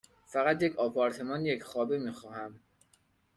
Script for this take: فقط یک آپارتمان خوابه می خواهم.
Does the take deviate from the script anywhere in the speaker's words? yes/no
yes